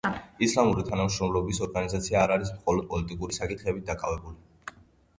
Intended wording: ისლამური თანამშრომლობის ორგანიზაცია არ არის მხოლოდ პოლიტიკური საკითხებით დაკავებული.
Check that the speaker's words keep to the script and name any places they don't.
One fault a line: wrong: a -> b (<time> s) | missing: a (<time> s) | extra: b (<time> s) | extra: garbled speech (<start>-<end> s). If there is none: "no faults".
no faults